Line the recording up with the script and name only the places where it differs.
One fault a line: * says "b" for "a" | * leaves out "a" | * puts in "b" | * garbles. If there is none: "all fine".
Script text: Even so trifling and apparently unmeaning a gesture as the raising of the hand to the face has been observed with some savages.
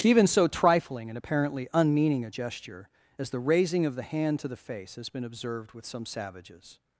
all fine